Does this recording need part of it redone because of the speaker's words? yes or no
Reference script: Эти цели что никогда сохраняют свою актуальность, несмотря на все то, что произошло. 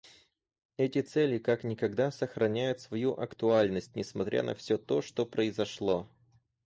yes